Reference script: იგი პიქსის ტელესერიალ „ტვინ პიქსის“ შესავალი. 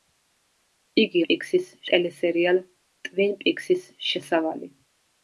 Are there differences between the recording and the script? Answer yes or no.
no